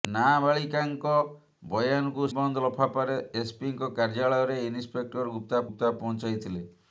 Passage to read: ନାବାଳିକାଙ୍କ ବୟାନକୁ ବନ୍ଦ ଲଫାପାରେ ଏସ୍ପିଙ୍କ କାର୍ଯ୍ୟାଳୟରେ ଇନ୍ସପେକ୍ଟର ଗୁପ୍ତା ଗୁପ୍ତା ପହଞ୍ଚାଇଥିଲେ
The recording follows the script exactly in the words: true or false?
true